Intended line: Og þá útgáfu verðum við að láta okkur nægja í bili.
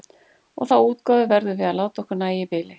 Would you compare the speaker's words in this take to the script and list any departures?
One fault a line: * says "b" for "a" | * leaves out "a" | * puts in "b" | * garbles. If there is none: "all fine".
all fine